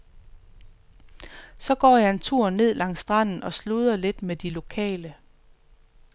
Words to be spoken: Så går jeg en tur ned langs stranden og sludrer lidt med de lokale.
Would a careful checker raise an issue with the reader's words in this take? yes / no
no